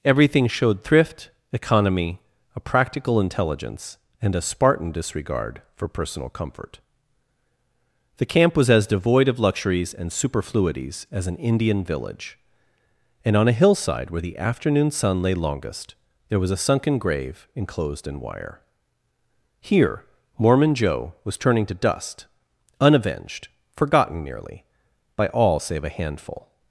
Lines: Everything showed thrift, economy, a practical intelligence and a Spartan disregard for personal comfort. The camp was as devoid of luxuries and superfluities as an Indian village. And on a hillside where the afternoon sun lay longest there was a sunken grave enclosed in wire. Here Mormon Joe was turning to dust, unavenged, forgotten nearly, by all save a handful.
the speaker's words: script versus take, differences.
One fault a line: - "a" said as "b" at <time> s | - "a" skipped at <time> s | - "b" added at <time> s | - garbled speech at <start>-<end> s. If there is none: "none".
none